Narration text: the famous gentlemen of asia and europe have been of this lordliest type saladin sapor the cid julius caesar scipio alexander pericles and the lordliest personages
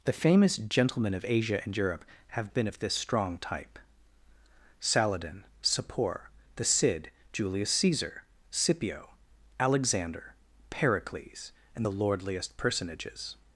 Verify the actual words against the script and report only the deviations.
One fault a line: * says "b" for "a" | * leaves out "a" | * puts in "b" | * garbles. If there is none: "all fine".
* says "strong" for "lordliest"